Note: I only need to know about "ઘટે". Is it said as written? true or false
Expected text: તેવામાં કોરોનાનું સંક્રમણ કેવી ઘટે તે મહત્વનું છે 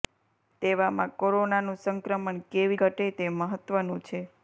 true